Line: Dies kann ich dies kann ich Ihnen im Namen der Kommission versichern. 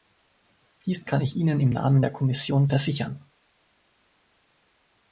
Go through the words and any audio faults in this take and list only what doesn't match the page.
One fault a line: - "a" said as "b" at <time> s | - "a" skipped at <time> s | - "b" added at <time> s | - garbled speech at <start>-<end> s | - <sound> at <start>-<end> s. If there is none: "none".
- "dies kann ich" skipped at 1.4 s